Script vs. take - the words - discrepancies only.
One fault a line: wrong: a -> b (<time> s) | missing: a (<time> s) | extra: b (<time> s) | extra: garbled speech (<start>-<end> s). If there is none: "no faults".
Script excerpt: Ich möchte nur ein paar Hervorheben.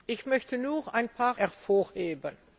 no faults